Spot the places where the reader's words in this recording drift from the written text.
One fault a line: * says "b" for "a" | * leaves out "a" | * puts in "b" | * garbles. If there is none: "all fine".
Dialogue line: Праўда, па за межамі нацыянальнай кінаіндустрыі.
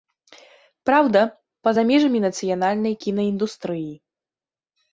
all fine